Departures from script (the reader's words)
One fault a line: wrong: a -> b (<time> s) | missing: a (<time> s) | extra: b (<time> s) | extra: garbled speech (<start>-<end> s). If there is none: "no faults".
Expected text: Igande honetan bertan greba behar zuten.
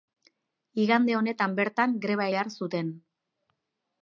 no faults